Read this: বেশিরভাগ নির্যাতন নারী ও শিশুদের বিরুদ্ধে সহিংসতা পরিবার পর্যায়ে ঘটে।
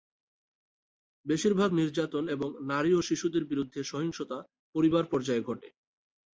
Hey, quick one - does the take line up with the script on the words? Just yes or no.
no